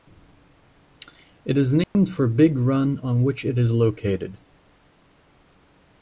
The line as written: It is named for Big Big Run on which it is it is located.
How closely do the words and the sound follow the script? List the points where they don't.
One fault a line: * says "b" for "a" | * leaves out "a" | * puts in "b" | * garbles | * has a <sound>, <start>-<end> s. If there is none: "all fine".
* has a dropout, 1.8-2.0 s
* leaves out "Big"
* leaves out "it is"